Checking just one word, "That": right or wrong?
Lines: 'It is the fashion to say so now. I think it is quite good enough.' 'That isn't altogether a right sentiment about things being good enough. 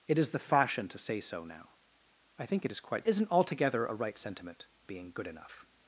wrong